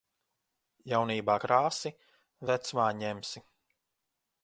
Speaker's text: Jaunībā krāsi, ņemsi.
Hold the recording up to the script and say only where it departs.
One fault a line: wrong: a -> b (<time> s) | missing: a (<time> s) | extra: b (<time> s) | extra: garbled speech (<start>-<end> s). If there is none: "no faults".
extra: vecumā (2.5 s)